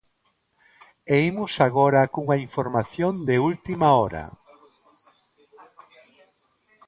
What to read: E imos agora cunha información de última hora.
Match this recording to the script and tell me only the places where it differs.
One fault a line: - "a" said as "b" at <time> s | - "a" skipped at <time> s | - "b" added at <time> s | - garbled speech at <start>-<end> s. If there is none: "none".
none